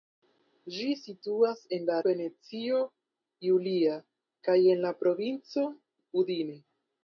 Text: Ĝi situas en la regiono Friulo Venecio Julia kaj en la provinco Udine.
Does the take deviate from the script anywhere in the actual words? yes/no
yes